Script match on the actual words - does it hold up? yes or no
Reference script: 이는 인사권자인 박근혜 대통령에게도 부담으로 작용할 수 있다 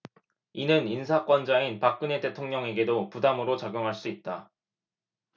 yes